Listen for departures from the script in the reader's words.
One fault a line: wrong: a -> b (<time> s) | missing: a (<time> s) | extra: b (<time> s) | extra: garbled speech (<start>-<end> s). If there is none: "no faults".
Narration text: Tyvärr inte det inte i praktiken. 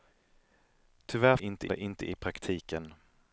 no faults